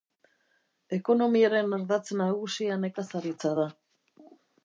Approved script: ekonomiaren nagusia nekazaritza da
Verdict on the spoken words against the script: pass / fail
fail